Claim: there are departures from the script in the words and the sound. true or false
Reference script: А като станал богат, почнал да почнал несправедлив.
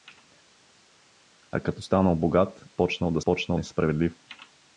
false